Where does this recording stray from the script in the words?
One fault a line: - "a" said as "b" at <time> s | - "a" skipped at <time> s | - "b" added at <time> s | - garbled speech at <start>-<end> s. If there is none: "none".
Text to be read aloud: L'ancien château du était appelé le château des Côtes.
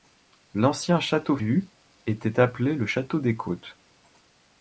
none